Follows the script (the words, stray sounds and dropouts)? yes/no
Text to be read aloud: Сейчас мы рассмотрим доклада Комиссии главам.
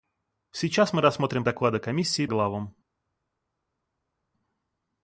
yes